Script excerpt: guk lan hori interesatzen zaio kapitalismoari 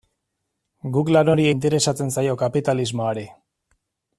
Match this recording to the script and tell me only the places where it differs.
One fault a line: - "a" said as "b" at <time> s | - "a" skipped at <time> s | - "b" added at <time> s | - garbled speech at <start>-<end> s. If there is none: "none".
none